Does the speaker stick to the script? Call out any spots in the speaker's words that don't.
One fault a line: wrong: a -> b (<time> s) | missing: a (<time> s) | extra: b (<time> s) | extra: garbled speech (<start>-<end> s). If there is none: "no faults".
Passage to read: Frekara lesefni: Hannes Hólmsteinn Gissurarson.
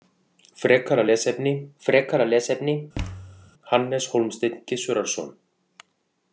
extra: frekara lesefni (1.8 s)